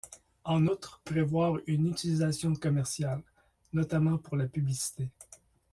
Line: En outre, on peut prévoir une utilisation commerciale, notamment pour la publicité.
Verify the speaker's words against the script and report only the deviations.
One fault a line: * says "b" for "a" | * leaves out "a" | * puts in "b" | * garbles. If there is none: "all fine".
* leaves out "on peut"